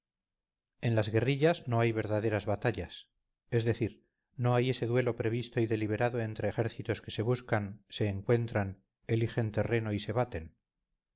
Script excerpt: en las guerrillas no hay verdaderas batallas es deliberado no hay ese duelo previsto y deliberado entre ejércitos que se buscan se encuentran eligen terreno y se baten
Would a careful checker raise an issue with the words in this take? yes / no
yes